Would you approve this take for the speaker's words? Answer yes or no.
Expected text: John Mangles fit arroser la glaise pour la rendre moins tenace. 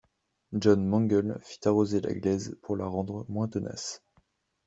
yes